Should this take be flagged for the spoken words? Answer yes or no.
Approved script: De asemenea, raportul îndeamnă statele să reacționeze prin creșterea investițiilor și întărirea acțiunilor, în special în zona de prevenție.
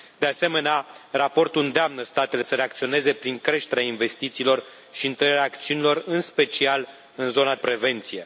yes